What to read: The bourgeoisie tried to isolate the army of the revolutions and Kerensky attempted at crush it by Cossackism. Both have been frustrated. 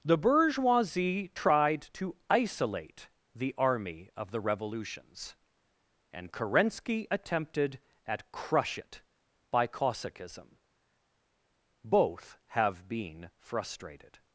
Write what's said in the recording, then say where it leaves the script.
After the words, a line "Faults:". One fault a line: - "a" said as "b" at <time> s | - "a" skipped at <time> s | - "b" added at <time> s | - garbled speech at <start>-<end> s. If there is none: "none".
The bourgeoisie tried to isolate the army of the revolutions and Kerensky attempted at crush it by Cossackism. Both have been frustrated.
Faults:
none